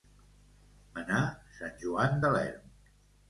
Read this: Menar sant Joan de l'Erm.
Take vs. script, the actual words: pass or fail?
pass